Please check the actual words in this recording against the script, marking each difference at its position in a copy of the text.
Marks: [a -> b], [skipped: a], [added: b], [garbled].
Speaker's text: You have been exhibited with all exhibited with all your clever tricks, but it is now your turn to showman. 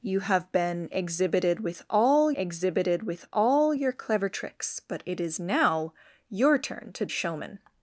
You have been exhibited with all exhibited with all your clever tricks, but it is now your turn to showman.